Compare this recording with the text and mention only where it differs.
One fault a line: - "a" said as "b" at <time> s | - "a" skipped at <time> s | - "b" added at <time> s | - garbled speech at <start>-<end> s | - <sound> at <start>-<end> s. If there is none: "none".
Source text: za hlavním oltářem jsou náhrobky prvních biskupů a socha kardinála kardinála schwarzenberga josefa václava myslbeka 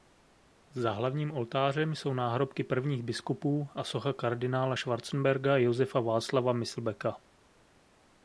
- "kardinála" skipped at 4.8 s